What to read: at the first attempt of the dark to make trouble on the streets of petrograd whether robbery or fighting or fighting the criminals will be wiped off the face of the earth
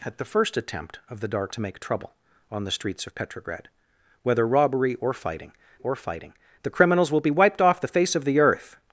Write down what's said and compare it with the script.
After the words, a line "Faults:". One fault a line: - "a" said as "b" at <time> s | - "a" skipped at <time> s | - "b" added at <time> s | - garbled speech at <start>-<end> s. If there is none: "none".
at the first attempt of the dark to make trouble on the streets of petrograd whether robbery or fighting or fighting the criminals will be wiped off the face of the earth
Faults:
none